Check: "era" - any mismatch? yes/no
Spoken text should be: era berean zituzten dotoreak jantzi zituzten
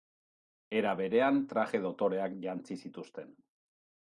no